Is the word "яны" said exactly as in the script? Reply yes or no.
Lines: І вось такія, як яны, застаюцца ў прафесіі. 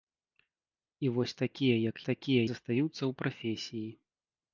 no